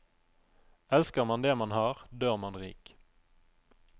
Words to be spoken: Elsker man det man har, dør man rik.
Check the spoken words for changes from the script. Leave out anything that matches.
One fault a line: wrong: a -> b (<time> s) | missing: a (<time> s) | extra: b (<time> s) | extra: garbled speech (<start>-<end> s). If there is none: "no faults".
no faults